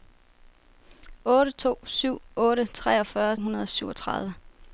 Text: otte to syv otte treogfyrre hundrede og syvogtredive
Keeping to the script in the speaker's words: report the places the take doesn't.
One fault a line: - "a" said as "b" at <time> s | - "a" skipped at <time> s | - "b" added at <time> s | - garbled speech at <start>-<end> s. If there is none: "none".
none